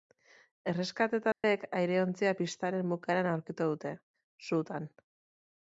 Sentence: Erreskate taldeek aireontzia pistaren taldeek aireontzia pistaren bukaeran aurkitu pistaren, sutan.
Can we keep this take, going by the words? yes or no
no